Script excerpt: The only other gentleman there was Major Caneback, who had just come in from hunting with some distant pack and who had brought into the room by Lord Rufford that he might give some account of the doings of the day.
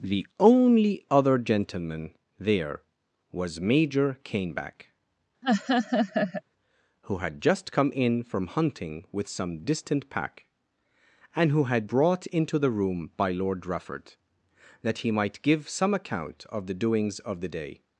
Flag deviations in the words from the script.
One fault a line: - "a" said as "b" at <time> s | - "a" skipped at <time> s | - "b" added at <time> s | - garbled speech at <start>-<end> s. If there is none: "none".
none